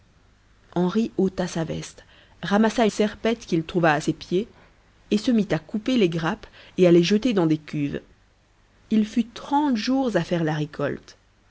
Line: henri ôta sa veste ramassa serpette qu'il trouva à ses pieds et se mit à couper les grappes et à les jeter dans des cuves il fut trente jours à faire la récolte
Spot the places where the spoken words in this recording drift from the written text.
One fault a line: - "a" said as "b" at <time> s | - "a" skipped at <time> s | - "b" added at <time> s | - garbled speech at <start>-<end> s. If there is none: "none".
none